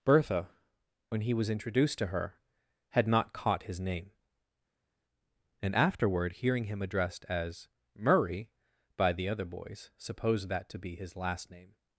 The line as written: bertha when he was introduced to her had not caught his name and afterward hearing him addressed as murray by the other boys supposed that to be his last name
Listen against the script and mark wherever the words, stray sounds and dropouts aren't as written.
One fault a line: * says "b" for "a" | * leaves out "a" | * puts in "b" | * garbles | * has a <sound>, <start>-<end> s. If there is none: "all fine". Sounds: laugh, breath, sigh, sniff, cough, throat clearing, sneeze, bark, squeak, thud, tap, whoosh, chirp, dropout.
all fine